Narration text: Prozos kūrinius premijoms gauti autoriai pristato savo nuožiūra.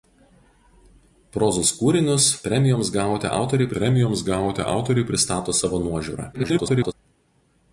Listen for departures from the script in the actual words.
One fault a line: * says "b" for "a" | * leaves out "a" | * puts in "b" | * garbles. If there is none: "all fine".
* puts in "premijoms gauti autoriai"
* garbles